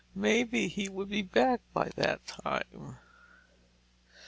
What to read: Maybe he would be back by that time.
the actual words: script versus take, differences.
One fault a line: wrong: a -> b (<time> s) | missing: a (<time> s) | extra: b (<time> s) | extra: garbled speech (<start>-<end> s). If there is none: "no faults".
no faults